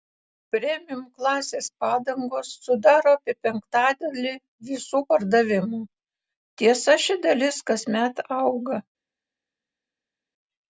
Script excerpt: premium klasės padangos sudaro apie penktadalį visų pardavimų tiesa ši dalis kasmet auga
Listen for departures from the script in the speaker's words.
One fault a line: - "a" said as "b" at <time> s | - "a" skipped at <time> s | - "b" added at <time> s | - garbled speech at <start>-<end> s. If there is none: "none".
none